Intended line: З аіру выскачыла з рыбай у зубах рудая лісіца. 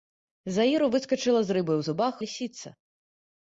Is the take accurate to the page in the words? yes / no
no